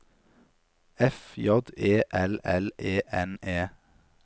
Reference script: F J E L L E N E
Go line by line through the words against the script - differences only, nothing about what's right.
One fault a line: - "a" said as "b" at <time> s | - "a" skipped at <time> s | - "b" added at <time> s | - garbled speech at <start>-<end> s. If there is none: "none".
none